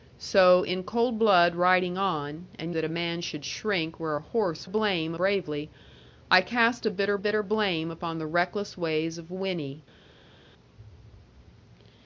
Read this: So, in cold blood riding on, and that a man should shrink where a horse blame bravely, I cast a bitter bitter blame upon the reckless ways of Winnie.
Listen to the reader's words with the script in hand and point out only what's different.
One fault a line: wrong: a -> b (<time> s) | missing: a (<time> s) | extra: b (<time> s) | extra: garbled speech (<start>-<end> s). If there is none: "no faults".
no faults